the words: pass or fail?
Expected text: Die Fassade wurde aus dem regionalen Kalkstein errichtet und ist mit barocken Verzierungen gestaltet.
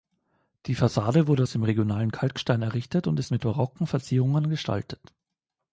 pass